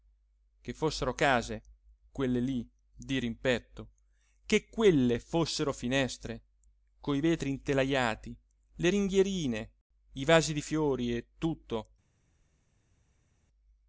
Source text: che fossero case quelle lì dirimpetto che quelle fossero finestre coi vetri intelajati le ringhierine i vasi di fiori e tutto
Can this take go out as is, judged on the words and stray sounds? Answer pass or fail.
pass